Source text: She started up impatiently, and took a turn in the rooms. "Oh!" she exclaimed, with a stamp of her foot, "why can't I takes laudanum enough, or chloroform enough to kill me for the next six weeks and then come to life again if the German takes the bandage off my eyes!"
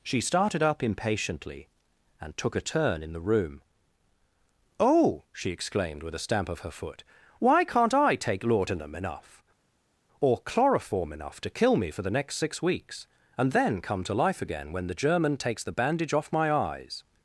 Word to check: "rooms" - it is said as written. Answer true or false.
false